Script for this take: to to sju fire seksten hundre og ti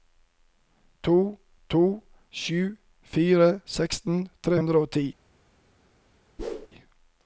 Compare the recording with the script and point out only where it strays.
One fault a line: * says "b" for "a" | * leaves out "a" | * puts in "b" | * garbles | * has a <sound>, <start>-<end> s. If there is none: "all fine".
* puts in "tre"
* has a whoosh, 6.4-6.7 s